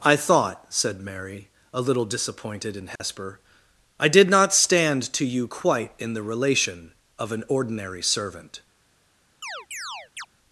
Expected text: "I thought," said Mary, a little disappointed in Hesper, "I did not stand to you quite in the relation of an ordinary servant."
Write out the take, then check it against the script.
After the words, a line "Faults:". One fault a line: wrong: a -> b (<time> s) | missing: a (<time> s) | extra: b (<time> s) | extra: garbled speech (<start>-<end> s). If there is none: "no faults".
"I thought," said Mary, a little disappointed in Hesper, "I did not stand to you quite in the relation of an ordinary servant."
Faults:
no faults